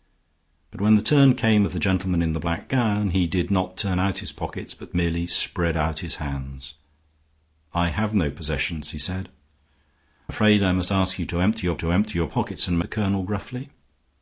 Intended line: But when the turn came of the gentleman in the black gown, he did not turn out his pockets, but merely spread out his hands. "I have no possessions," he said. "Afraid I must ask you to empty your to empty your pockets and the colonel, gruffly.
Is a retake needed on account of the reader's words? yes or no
no